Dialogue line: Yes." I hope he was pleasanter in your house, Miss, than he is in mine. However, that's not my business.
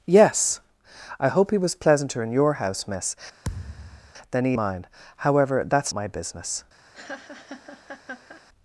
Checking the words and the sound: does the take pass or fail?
fail